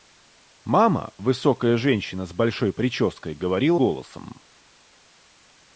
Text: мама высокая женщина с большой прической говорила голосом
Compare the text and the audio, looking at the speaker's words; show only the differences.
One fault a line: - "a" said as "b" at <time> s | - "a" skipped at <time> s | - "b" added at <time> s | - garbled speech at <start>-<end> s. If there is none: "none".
none